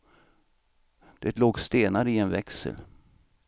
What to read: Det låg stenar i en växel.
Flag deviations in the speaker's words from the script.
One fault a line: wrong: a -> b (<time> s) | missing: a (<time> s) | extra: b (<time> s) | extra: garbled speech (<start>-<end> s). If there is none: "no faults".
no faults